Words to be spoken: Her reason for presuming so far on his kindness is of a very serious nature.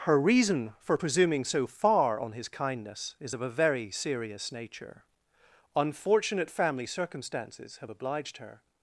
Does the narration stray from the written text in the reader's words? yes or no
yes